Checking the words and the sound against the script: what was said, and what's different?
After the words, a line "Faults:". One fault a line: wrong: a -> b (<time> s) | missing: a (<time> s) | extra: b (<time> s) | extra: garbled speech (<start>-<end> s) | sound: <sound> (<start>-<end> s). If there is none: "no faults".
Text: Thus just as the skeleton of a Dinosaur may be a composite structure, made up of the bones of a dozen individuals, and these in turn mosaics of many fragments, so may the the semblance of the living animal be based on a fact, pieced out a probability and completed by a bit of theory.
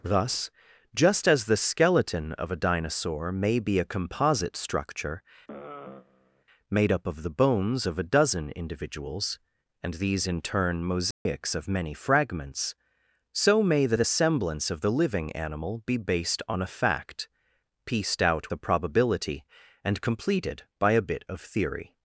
Thus just as the skeleton of a Dinosaur may be a composite structure, made up of the bones of a dozen individuals, and these in turn mosaics of many fragments, so may the the semblance of the living animal be based on a fact, pieced out a probability and completed by a bit of theory.
Faults:
sound: sigh (5.5-6.4 s)
sound: dropout (11.1-11.3 s)